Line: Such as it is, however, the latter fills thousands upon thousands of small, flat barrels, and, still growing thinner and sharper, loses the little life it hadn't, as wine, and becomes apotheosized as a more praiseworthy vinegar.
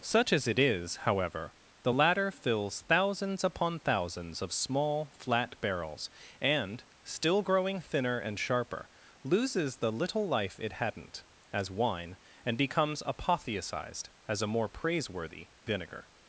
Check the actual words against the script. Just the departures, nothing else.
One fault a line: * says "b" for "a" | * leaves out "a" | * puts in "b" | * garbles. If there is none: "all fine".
all fine